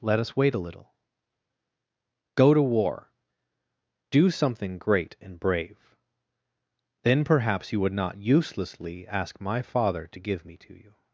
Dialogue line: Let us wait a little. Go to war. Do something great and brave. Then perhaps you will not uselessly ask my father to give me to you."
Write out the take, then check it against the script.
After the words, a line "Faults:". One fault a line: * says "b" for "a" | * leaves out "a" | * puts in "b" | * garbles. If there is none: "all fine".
Let us wait a little. Go to war. Do something great and brave. Then perhaps you would not uselessly ask my father to give me to you."
Faults:
* says "would" for "will"